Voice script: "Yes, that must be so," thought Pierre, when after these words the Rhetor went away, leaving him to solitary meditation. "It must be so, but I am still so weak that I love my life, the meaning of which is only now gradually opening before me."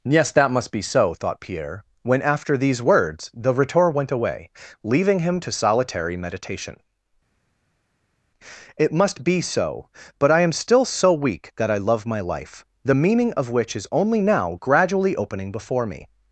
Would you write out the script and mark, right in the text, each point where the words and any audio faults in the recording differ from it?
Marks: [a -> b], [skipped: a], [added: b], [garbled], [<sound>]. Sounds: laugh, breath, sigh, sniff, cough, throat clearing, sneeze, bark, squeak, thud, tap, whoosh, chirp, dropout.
"Yes, that must be so," thought Pierre, when after these words the Rhetor went away, leaving him to solitary meditation. "It must be so, but I am still so weak that I love my life, the meaning of which is only now gradually opening before me."